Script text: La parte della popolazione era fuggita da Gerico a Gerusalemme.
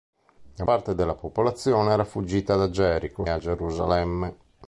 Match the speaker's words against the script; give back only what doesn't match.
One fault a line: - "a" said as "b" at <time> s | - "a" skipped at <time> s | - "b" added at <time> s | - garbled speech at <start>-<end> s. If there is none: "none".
none